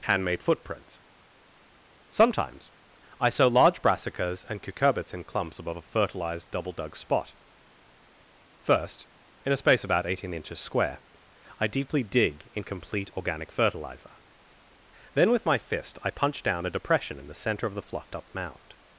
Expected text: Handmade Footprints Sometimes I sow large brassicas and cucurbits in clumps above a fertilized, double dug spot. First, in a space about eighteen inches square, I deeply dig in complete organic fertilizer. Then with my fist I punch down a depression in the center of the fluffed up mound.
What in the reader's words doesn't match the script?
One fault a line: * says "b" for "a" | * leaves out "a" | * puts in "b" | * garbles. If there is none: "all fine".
all fine